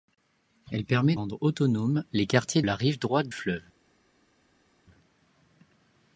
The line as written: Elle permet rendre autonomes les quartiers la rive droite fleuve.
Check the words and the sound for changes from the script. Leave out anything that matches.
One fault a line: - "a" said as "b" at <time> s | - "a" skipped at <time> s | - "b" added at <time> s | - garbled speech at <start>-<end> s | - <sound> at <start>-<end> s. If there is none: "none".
none